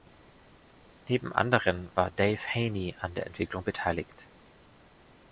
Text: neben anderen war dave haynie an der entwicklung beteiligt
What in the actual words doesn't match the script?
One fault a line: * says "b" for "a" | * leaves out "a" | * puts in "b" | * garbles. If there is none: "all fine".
all fine